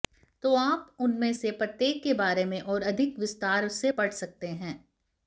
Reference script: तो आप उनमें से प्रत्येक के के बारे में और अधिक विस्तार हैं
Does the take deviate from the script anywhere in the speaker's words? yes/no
yes